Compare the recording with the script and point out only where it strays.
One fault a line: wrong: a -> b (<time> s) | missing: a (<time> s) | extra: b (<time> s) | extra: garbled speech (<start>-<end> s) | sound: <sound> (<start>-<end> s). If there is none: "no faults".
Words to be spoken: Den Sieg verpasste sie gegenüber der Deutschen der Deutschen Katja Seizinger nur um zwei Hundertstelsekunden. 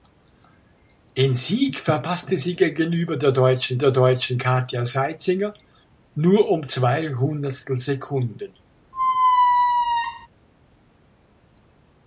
sound: squeak (8.9-10.3 s)